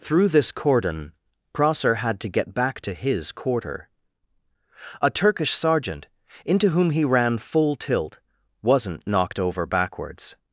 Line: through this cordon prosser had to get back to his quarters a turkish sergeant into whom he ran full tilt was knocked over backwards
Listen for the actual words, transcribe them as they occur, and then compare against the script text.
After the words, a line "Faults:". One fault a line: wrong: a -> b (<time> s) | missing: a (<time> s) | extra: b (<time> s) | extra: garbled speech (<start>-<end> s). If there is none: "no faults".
through this cordon prosser had to get back to his quarter a turkish sergeant into whom he ran full tilt wasn't knocked over backwards
Faults:
wrong: quarters -> quarter (3.3 s)
wrong: was -> wasn't (8.6 s)